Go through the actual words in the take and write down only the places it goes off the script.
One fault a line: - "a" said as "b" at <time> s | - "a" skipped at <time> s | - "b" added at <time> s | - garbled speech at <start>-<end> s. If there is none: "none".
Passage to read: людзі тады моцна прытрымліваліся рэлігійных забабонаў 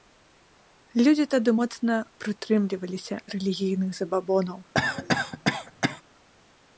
none